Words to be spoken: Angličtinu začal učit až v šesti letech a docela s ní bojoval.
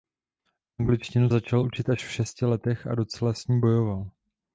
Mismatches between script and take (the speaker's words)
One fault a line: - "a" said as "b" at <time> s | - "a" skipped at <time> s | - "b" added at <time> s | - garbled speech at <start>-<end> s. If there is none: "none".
none